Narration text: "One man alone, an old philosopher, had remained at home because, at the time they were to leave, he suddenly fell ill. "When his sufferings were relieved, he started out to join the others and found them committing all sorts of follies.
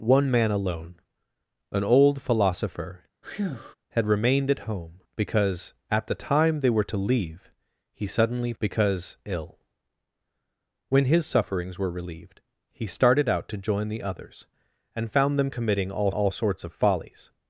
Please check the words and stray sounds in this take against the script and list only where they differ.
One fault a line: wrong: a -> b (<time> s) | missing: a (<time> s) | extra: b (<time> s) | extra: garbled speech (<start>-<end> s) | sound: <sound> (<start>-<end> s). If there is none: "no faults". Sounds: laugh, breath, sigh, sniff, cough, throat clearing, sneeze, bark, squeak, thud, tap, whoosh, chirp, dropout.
sound: breath (3.2-3.8 s)
wrong: fell -> because (8.6 s)
extra: all (16.1 s)